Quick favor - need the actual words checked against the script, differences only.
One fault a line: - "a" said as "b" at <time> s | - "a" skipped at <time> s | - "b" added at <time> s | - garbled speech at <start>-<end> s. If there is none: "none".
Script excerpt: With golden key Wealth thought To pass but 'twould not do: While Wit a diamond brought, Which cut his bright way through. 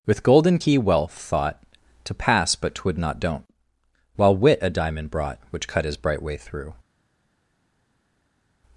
- "do" said as "don't" at 3.2 s